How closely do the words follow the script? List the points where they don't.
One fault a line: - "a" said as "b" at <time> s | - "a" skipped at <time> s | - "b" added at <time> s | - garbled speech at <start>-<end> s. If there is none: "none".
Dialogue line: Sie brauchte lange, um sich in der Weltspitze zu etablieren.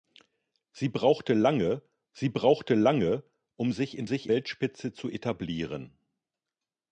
- "sie brauchte lange" added at 2.1 s
- "der" said as "sich" at 4.0 s